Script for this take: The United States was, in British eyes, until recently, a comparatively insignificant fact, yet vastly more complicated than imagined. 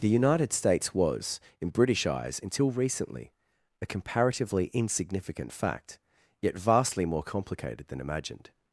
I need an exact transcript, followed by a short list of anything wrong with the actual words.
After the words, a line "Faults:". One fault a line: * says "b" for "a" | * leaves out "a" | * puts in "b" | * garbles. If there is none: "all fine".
The United States was, in British eyes, until recently, a comparatively insignificant fact, yet vastly more complicated than imagined.
Faults:
all fine